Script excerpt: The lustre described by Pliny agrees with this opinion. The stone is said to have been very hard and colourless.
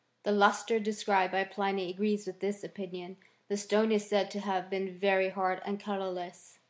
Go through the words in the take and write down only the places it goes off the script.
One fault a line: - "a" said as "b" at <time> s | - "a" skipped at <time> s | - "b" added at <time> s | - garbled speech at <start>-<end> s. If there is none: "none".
none